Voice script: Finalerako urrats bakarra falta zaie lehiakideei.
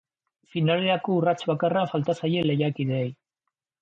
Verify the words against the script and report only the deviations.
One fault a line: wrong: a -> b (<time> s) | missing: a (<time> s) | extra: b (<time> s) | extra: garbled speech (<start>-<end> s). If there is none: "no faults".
no faults